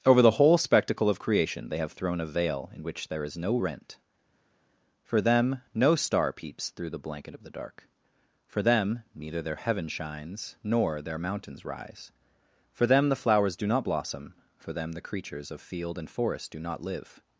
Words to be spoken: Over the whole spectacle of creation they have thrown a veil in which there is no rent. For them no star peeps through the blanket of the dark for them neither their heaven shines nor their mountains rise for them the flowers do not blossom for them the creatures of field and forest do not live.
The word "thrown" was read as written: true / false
true